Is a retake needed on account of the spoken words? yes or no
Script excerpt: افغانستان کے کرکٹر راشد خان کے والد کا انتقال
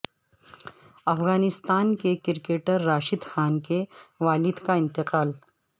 no